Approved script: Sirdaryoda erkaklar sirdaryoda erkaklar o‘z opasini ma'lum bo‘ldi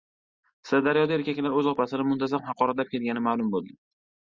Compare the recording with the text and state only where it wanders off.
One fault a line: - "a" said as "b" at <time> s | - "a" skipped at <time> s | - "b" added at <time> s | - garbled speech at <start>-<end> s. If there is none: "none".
- "sirdaryoda erkaklar o‘z opasini" said as "o‘z opasini muntazam haqoratlab kelgani" at 1.6 s